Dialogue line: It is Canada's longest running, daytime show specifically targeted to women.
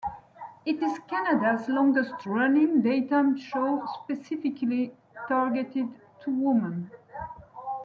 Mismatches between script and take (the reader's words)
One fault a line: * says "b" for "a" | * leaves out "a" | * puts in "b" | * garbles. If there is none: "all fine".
all fine